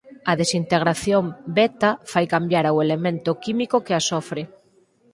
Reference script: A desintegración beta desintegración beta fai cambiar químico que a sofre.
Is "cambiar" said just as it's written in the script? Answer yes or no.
no